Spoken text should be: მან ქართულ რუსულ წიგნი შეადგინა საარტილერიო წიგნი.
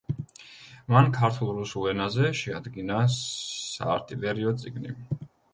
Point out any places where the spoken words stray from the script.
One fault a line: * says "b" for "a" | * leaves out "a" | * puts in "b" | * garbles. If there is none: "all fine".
* says "ენაზე" for "წიგნი"